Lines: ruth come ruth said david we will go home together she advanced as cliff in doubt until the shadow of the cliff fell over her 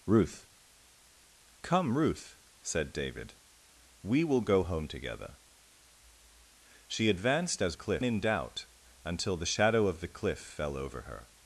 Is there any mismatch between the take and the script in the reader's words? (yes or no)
no